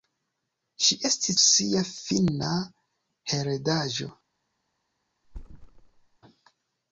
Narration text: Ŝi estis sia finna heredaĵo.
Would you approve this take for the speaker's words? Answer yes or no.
yes